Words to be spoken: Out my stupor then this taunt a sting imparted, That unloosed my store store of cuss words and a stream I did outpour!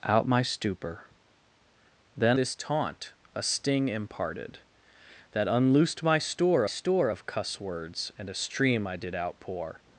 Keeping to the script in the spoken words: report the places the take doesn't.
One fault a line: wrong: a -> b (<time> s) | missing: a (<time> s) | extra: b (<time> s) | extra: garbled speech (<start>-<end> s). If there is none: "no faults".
no faults